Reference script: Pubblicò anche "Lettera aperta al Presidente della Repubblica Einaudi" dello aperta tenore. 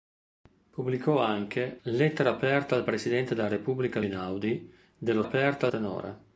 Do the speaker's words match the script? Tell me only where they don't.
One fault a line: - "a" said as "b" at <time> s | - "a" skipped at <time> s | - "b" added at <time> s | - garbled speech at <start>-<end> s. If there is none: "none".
none